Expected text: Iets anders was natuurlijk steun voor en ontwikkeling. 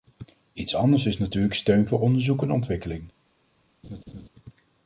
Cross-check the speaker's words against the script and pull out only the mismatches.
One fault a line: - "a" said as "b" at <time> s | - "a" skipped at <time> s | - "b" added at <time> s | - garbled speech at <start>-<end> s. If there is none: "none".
- "was" said as "is" at 1.1 s
- "onderzoek" added at 2.0 s